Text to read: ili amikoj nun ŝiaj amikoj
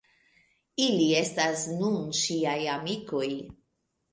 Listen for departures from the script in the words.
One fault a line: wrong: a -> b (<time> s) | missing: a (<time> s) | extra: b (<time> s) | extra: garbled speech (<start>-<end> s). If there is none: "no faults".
wrong: amikoj -> estas (1.2 s)